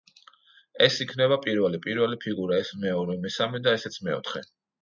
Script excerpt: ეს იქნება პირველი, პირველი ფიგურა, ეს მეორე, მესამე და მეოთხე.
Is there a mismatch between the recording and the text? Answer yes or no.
yes